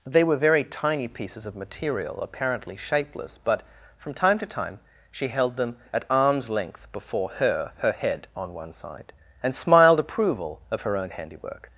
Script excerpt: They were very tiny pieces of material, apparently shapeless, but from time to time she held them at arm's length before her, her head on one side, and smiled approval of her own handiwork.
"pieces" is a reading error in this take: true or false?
false